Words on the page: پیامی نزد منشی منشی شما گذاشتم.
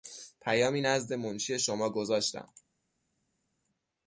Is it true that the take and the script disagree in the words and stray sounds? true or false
true